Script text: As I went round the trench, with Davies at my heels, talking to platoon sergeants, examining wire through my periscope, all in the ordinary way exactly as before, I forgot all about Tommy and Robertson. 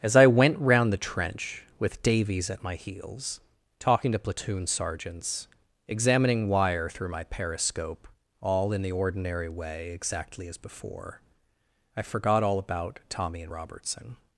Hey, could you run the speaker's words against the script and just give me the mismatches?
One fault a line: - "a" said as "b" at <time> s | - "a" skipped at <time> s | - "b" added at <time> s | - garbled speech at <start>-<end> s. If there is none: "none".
none